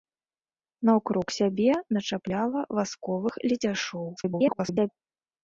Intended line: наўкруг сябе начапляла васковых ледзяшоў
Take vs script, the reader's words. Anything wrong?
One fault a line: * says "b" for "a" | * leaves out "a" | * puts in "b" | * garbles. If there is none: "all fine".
* garbles